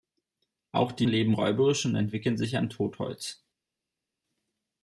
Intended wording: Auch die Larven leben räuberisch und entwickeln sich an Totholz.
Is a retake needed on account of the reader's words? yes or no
yes